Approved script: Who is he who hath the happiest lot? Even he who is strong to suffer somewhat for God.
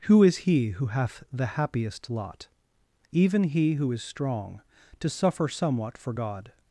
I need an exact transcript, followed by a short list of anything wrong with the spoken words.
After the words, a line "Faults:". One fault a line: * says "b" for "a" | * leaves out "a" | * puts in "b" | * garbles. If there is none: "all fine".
Who is he who hath the happiest lot? Even he who is strong to suffer somewhat for God.
Faults:
all fine